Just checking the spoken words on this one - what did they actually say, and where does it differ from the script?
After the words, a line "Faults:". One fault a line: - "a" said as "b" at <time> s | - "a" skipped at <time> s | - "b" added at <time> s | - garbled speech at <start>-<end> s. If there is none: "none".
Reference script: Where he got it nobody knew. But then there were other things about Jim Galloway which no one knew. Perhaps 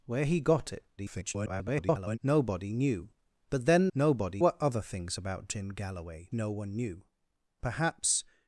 Where he got it [garbled] nobody knew. But then nobody were other things about Jim Galloway no one knew. Perhaps
Faults:
- garbled speech at 1.0-2.2 s
- "there" said as "nobody" at 3.9 s
- "which" skipped at 6.3 s